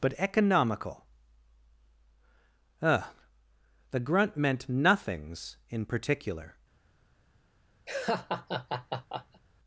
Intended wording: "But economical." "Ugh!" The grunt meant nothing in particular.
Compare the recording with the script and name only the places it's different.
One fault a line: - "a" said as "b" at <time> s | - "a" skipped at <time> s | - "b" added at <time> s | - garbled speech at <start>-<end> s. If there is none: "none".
- "nothing" said as "nothings" at 4.7 s